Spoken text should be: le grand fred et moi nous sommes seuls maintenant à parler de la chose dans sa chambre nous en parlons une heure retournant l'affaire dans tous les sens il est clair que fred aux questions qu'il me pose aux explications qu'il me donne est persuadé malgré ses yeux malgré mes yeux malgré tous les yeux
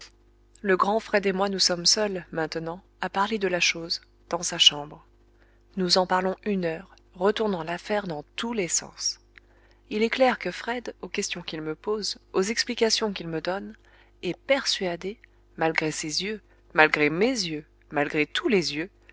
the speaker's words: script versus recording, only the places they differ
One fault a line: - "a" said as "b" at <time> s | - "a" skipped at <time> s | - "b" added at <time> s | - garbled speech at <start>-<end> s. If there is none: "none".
none